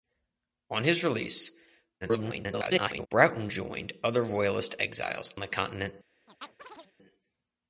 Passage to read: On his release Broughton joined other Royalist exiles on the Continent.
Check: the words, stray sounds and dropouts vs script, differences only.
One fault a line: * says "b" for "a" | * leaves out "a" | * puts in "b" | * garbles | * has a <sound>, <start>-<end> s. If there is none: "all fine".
* garbles
* leaves out "on"
* has a chirp, 6.3-6.9 s